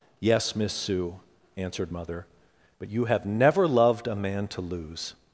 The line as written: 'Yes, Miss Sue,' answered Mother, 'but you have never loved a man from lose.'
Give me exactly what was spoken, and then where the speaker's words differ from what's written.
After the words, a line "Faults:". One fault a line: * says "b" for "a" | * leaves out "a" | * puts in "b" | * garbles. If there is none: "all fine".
'Yes, Miss Sue,' answered Mother, 'but you have never loved a man to lose.'
Faults:
* says "to" for "from"